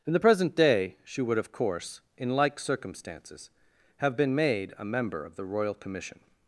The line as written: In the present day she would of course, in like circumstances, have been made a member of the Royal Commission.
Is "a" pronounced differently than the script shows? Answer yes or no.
no